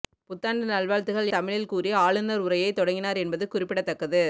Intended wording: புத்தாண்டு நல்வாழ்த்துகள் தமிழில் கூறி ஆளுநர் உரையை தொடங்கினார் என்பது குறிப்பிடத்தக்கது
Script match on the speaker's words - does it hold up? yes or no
yes